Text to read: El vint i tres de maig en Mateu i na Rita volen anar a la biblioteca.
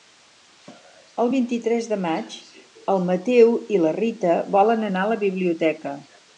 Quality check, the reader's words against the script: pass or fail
pass